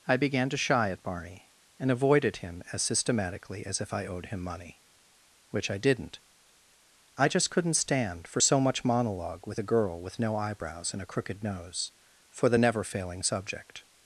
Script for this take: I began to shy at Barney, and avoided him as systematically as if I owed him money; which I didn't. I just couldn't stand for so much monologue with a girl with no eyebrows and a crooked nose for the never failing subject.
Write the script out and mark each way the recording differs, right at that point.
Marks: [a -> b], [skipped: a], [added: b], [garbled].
I began to shy at Barney, and avoided him as systematically as if I owed him money; which I didn't. I just couldn't stand for so much monologue with a girl with no eyebrows and a crooked nose for the never failing subject.